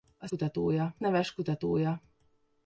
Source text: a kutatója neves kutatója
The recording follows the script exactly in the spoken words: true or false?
true